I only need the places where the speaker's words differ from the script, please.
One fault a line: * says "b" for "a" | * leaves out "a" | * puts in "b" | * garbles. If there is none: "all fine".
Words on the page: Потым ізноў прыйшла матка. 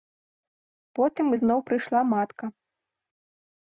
all fine